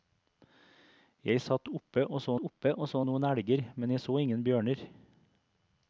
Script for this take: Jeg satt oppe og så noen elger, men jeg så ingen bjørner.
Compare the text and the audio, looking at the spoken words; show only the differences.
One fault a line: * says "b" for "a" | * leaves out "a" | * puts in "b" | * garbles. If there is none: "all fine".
* puts in "oppe og så"